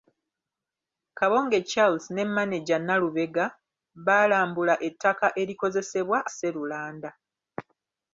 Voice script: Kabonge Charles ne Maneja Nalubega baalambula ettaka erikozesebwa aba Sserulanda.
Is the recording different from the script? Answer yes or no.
yes